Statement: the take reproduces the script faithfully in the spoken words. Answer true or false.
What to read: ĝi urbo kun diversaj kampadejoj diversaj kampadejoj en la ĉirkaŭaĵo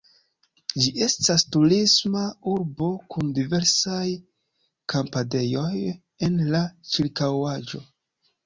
false